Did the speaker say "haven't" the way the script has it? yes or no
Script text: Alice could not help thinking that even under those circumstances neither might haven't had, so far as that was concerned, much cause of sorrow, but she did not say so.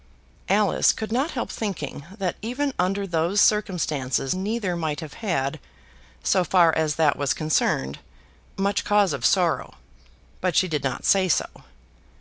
no